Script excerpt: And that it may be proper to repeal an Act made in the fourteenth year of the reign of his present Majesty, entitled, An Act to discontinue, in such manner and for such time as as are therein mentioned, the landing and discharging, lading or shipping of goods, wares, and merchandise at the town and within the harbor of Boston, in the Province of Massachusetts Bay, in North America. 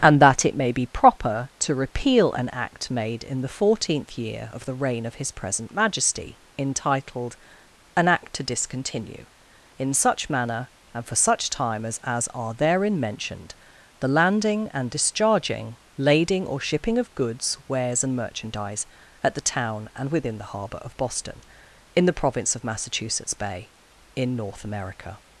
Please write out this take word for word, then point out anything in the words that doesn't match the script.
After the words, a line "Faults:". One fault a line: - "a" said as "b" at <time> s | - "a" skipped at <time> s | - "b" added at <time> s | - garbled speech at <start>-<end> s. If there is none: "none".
And that it may be proper to repeal an Act made in the fourteenth year of the reign of his present Majesty, entitled, An Act to discontinue, in such manner and for such time as as are therein mentioned, the landing and discharging, lading or shipping of goods, wares, and merchandise at the town and within the harbor of Boston, in the Province of Massachusetts Bay, in North America.
Faults:
none